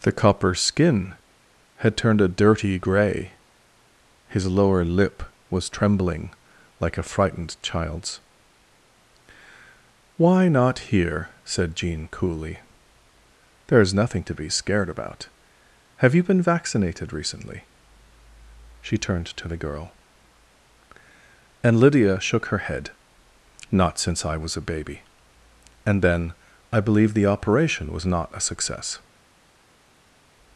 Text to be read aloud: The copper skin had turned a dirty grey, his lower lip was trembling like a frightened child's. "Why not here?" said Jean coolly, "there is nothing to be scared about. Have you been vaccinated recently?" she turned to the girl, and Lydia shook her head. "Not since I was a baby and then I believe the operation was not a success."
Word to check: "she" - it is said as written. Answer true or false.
true